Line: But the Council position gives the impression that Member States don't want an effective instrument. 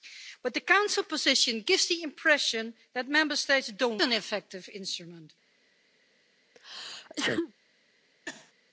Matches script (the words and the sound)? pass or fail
fail